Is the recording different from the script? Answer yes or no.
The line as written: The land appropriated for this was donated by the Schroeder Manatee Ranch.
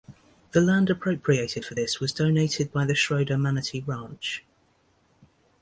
no